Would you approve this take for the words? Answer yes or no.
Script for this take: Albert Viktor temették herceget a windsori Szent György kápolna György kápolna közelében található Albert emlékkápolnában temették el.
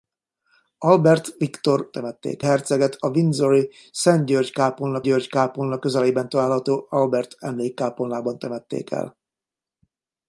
yes